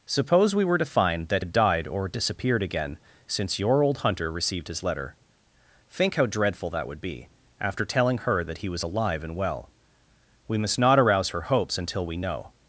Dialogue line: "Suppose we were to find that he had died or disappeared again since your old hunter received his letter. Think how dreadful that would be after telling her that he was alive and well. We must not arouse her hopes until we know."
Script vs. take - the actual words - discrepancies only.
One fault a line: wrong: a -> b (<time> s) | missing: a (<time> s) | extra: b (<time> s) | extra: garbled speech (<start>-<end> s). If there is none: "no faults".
missing: he (1.4 s)